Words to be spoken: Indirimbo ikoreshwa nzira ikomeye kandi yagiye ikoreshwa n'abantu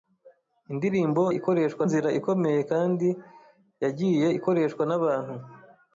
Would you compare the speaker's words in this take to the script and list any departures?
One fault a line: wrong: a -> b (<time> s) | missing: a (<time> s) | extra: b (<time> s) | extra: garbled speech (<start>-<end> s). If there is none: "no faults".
no faults